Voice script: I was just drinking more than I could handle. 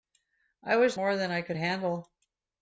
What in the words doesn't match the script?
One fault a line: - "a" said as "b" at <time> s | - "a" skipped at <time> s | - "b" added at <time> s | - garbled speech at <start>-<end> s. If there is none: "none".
- "just drinking" skipped at 1.0 s